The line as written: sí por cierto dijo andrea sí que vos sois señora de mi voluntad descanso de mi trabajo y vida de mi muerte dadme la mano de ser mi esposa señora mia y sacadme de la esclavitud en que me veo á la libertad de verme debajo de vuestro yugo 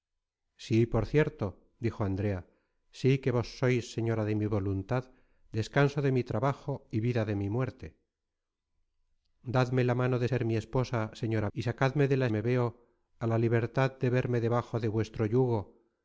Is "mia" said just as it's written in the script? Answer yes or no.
no